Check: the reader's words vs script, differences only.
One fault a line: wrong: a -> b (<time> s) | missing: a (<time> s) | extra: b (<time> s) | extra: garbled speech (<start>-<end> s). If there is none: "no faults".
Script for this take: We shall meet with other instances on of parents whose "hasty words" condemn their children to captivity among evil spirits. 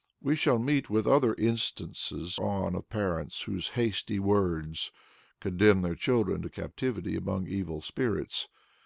no faults